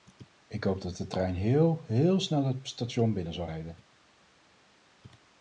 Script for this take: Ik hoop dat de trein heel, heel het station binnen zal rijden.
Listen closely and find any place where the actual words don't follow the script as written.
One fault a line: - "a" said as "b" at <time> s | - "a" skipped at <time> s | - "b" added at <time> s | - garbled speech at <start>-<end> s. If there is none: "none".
- "snel" added at 2.2 s